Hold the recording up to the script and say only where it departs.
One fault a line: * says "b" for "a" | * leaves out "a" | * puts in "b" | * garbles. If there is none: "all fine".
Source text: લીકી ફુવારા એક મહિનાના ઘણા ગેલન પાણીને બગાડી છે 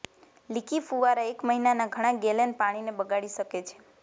* puts in "શકે"